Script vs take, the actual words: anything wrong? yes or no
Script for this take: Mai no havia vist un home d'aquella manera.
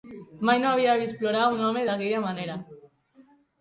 yes